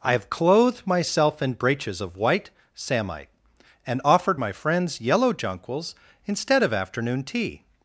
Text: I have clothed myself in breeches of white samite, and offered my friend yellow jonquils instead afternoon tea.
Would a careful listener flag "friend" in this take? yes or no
yes